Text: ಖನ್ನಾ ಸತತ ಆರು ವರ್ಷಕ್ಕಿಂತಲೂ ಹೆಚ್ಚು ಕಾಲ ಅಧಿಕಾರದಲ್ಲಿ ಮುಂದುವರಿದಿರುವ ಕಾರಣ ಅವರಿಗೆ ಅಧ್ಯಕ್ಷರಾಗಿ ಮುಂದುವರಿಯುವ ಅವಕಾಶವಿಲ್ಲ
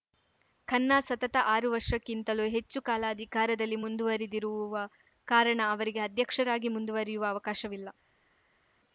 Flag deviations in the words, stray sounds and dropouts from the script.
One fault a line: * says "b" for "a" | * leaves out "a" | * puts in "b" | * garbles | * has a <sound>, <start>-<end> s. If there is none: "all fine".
all fine